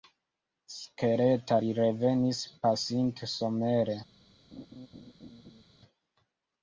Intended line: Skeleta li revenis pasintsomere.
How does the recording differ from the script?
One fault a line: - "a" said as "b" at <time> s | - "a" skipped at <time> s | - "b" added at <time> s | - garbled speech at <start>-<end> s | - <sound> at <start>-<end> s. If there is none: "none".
- laugh at 4.5-5.6 s